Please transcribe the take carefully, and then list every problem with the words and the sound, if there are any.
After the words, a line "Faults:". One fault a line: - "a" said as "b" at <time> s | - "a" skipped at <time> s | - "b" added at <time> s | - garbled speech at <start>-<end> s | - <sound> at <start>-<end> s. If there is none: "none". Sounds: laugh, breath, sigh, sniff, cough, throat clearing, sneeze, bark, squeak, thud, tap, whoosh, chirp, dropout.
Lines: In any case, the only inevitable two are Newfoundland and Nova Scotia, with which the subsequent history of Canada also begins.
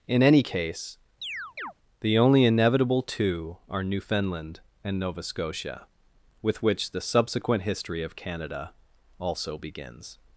In any case, the only inevitable two are Newfoundland and Nova Scotia, with which the subsequent history of Canada also begins.
Faults:
- chirp at 1.2-1.7 s